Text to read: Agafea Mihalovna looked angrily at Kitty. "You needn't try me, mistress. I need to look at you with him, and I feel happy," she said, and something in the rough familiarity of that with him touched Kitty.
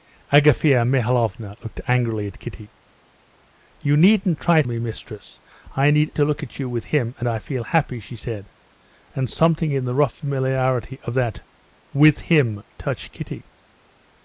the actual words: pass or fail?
pass